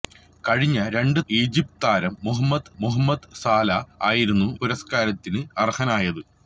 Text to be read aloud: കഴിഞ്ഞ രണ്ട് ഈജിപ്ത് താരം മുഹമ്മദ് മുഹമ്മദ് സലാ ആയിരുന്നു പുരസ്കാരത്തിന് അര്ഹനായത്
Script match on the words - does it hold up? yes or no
yes